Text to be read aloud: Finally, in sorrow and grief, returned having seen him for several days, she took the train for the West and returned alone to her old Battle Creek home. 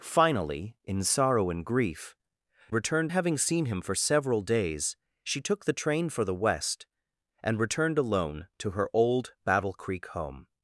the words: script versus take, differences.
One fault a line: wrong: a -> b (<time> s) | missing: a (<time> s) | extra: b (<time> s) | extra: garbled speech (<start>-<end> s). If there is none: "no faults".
no faults